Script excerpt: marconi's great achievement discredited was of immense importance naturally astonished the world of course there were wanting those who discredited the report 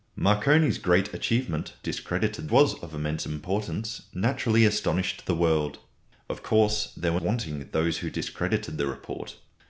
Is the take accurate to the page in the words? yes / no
yes